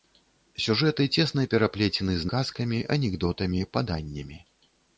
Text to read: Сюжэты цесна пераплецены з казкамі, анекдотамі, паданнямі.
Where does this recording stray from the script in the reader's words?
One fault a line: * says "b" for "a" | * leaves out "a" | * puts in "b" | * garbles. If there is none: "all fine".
all fine